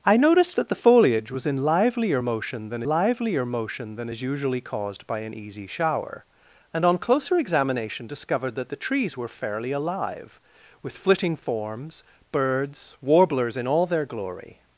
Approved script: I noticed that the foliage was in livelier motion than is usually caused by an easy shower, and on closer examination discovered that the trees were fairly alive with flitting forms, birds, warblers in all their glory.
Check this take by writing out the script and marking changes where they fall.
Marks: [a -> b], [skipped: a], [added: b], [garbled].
I noticed that the foliage was in livelier motion than [added: livelier motion than] is usually caused by an easy shower, and on closer examination discovered that the trees were fairly alive with flitting forms, birds, warblers in all their glory.